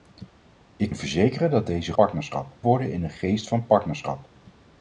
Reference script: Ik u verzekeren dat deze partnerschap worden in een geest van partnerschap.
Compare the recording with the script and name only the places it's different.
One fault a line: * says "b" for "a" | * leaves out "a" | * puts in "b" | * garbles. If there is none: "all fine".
all fine